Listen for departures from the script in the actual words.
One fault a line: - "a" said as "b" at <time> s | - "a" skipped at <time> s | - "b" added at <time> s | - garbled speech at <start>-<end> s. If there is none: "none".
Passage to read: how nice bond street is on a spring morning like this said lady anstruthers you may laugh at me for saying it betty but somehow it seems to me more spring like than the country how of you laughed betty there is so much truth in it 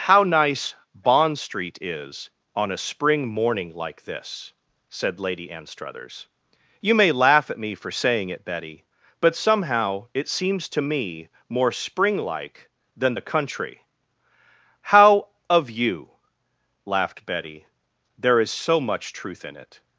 none